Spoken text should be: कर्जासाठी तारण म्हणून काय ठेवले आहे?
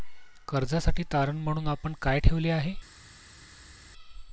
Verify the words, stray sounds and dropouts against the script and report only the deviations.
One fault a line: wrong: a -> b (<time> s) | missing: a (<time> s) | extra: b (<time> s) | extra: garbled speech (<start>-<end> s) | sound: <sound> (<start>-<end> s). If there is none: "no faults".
extra: आपण (1.7 s)